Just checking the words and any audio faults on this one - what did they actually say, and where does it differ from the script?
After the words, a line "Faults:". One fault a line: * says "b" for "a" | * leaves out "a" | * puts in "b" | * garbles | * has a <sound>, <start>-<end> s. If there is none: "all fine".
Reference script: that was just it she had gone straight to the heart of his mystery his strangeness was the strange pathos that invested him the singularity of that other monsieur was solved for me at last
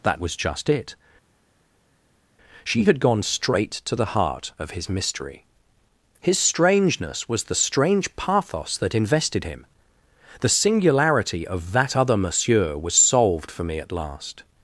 that was just it she had gone straight to the heart of his mystery his strangeness was the strange pathos that invested him the singularity of that other monsieur was solved for me at last
Faults:
all fine